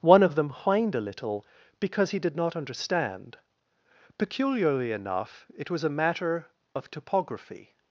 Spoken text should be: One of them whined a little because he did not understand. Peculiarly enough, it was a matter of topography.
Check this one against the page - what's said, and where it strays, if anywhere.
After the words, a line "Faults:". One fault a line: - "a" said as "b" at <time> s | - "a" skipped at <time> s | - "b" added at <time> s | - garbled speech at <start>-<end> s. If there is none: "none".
One of them whined a little because he did not understand. Peculiarly enough, it was a matter of topography.
Faults:
none